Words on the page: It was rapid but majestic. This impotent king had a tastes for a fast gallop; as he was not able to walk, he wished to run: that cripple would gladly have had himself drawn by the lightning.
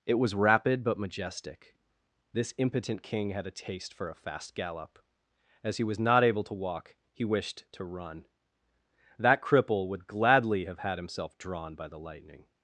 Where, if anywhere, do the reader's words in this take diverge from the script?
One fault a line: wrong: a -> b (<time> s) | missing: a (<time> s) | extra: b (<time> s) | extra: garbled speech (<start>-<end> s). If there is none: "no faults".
wrong: tastes -> taste (3.5 s)